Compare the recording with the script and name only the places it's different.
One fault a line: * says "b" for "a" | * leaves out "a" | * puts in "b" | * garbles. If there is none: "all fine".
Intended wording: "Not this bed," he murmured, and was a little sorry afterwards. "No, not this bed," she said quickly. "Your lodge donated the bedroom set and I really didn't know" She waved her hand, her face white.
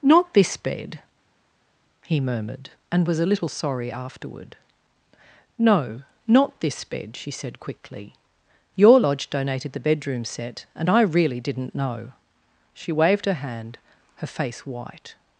* says "afterward" for "afterwards"